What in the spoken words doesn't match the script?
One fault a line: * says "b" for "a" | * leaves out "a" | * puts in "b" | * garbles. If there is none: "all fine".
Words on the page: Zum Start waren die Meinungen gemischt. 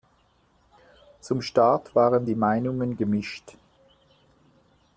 all fine